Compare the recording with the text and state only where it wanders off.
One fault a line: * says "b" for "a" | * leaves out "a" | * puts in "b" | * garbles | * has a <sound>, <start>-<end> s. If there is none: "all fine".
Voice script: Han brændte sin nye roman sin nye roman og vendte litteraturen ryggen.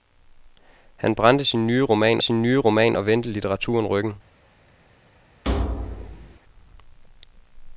* has a thud, 5.4-6.4 s